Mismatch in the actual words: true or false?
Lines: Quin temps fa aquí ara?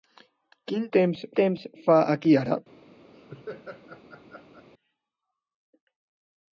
true